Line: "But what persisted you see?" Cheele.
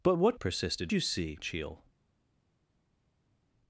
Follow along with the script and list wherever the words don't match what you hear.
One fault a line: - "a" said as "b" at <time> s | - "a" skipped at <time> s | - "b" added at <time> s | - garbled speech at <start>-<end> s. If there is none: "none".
none